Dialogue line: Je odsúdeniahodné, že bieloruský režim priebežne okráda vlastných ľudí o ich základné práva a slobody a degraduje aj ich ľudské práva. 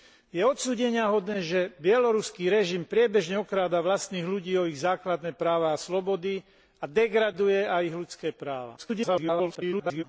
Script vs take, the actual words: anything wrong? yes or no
yes